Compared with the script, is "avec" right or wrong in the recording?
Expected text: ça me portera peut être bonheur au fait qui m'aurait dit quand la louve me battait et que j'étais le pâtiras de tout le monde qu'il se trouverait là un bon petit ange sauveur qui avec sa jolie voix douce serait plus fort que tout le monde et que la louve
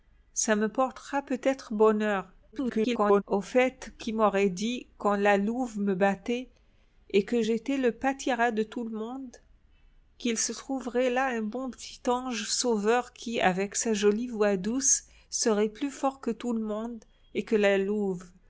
right